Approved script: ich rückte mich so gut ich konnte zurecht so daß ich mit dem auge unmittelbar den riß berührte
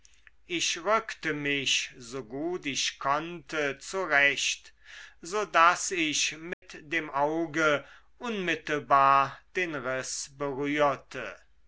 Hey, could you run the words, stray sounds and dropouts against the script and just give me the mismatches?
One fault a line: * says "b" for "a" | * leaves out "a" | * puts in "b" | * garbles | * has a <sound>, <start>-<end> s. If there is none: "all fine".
* has a dropout, 6.5-6.6 s